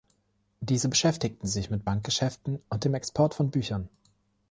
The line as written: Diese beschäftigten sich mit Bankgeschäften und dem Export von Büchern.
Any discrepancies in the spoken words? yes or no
no